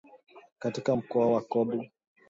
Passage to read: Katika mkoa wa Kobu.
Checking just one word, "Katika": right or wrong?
right